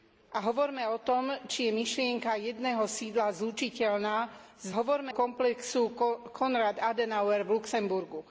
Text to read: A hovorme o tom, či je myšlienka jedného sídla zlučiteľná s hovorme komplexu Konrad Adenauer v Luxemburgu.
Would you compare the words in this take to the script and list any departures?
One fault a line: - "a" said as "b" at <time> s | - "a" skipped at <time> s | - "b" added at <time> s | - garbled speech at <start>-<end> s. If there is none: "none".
none